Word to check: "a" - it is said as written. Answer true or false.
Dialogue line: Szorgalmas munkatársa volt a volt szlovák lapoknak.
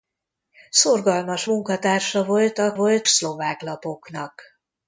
true